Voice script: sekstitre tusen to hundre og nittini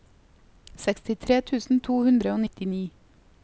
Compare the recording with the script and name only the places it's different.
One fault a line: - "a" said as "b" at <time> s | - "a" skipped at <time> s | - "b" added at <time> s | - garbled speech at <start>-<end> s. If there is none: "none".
none